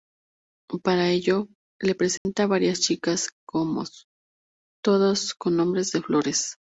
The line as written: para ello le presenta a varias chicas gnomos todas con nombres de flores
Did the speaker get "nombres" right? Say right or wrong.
right